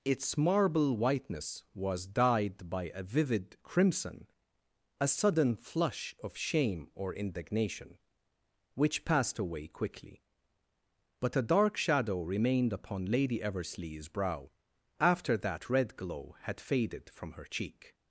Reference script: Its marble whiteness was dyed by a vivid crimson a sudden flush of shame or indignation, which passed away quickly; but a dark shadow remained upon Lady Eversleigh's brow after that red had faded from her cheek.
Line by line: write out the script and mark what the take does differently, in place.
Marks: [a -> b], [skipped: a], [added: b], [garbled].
Its marble whiteness was dyed by a vivid crimson a sudden flush of shame or indignation, which passed away quickly; but a dark shadow remained upon Lady Eversleigh's brow after that red [added: glow] had faded from her cheek.